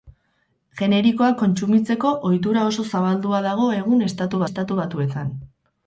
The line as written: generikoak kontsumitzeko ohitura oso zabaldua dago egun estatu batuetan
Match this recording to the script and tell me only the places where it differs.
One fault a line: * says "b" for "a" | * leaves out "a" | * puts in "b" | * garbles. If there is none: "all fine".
* puts in "estatu"